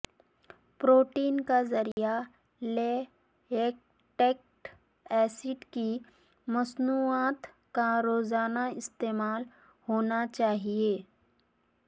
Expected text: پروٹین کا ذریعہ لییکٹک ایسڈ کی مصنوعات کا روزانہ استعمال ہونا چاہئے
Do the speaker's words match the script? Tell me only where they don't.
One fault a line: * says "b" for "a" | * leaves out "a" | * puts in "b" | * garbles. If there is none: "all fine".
all fine